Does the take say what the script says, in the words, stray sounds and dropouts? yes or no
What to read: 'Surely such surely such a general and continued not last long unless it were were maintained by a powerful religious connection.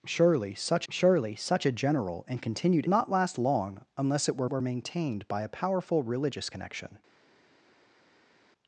yes